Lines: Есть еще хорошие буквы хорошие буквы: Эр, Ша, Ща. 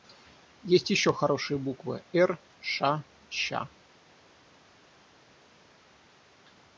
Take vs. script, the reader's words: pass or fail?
fail